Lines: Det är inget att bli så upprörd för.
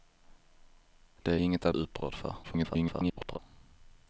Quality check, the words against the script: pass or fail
fail